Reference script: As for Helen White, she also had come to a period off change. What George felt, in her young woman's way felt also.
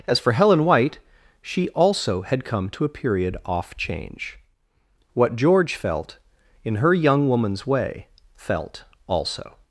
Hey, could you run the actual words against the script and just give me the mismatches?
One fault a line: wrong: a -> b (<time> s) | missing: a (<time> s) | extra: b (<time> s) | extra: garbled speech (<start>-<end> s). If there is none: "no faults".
no faults